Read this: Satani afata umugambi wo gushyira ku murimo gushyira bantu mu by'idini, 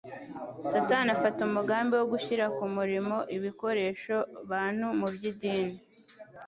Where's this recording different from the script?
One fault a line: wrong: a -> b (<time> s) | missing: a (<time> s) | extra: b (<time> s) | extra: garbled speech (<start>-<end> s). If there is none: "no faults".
wrong: gushyira -> ibikoresho (3.4 s)